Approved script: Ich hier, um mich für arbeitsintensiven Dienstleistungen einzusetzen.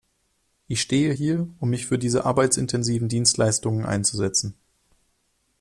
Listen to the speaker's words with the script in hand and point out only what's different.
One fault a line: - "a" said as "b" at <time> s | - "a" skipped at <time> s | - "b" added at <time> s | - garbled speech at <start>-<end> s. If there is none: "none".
- "stehe" added at 0.8 s
- "diese" added at 2.0 s